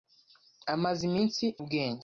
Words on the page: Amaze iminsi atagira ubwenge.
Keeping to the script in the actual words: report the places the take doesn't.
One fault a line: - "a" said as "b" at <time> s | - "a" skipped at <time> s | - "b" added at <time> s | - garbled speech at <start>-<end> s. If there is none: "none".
- "atagira" skipped at 1.4 s